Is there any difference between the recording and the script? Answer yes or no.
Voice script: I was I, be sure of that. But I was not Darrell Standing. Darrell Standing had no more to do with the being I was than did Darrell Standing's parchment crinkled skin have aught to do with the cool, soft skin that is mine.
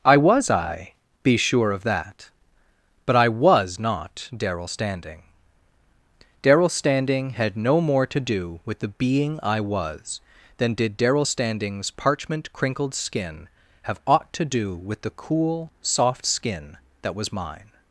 yes